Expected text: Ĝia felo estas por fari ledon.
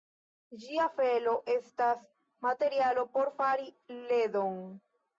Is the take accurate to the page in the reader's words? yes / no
no